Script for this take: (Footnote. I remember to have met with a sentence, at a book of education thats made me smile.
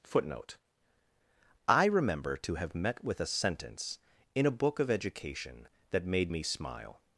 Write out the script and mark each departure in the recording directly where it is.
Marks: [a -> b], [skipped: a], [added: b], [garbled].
(Footnote. I remember to have met with a sentence, [at -> in] a book of education [thats -> that] made me smile.